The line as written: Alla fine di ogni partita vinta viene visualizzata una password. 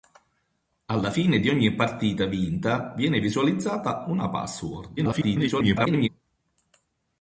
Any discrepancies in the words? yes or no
yes